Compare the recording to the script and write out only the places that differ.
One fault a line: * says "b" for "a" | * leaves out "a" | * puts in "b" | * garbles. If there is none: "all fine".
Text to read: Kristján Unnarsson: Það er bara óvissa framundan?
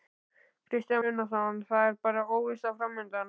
all fine